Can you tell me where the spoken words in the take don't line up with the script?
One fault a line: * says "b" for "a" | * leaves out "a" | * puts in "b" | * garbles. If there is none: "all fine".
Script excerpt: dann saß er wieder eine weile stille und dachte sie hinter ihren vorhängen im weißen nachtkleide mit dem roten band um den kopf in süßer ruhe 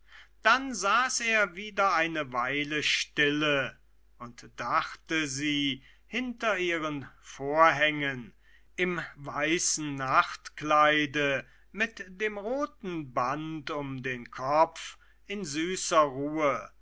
all fine